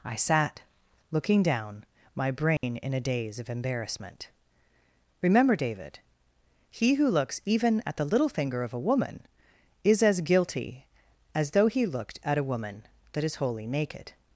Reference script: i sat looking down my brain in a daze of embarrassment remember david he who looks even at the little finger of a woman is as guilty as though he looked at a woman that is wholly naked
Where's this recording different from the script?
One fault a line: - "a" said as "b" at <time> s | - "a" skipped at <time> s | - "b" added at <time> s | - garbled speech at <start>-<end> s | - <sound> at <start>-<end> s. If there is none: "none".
- dropout at 2.6-2.6 s